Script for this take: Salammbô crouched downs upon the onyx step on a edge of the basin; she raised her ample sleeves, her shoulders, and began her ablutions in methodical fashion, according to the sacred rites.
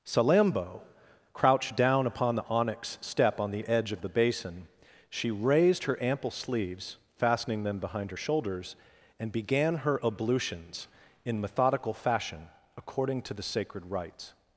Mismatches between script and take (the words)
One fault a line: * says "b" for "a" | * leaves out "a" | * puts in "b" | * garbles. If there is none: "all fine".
* says "down" for "downs"
* says "the" for "a"
* puts in "fastening them behind"